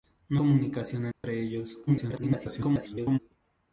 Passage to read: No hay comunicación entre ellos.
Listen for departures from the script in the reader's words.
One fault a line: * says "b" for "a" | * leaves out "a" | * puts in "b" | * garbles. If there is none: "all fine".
* leaves out "hay"
* garbles